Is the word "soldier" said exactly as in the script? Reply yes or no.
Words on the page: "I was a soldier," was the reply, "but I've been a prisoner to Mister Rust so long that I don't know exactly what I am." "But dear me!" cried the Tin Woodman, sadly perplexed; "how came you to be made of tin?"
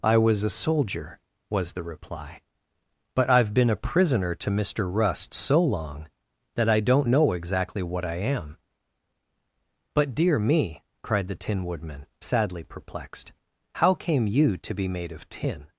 yes